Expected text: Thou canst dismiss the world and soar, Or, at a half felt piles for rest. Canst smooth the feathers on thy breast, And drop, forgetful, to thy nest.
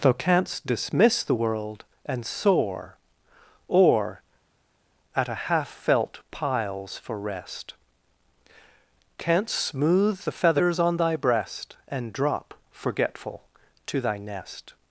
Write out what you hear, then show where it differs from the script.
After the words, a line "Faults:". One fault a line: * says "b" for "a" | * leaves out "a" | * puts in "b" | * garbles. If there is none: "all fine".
Thou canst dismiss the world and soar, Or, at a half felt piles for rest. Canst smooth the feathers on thy breast, And drop, forgetful, to thy nest.
Faults:
all fine